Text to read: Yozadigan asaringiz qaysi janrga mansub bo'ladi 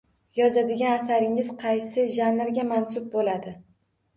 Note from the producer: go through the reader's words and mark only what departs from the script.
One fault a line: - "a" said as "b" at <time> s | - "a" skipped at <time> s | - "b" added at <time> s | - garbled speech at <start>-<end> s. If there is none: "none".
none